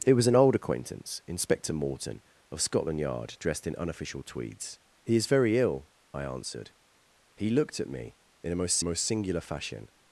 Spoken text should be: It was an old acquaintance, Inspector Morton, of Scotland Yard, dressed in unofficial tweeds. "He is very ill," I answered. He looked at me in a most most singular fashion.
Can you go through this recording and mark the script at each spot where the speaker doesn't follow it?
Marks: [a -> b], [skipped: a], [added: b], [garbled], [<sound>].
It was an old acquaintance, Inspector Morton, of Scotland Yard, dressed in unofficial tweeds. "He is very ill," I answered. He looked at me in a most most singular fashion.